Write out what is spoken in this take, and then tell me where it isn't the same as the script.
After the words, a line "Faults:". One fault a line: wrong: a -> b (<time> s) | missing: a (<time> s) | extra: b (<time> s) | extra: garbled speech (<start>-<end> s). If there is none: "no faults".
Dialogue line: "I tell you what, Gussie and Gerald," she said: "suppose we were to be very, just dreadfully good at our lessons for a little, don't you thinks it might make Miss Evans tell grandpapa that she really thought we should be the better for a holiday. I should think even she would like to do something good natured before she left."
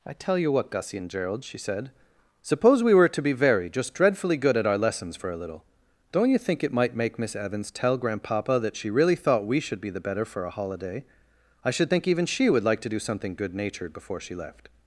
"I tell you what, Gussie and Gerald," she said: "suppose we were to be very, just dreadfully good at our lessons for a little, don't you think it might make Miss Evans tell grandpapa that she really thought we should be the better for a holiday. I should think even she would like to do something good natured before she left."
Faults:
wrong: thinks -> think (6.4 s)